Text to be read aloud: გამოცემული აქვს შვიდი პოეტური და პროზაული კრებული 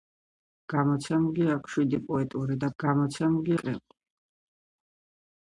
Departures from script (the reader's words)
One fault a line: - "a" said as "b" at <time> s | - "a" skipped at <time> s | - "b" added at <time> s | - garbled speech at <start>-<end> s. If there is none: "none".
- "პროზაული" said as "გამოცემული" at 2.8 s